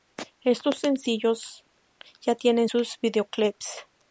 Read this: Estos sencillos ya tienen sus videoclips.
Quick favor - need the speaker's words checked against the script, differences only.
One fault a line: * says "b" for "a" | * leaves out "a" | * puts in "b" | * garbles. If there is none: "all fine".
all fine